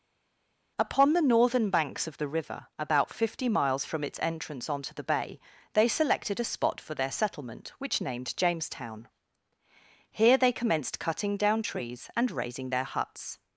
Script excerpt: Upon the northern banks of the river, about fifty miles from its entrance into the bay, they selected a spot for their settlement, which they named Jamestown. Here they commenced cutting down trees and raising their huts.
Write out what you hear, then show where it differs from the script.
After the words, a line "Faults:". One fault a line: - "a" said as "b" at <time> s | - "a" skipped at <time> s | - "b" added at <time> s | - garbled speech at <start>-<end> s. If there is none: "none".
Upon the northern banks of the river, about fifty miles from its entrance onto the bay, they selected a spot for their settlement, which named Jamestown. Here they commenced cutting down trees and raising their huts.
Faults:
- "into" said as "onto" at 4.7 s
- "they" skipped at 8.0 s